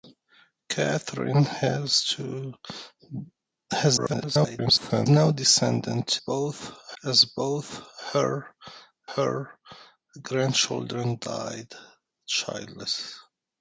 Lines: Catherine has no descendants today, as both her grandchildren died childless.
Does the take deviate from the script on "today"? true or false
true